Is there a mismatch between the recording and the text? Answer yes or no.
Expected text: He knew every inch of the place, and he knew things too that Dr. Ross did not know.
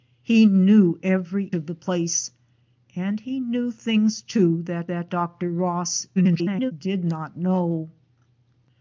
yes